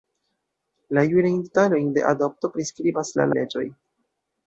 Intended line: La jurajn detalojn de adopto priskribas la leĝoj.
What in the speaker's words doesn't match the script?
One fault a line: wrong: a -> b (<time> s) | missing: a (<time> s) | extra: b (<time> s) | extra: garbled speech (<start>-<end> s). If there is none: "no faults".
no faults